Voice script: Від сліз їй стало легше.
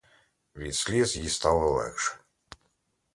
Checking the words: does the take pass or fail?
pass